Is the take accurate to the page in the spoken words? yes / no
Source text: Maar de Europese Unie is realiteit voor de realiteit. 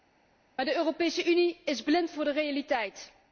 no